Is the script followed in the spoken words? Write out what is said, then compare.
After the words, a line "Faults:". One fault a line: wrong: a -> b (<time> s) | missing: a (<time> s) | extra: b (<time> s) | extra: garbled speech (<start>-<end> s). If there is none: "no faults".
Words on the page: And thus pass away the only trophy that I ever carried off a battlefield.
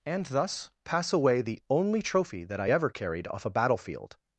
And thus pass away the only trophy that I ever carried off a battlefield.
Faults:
no faults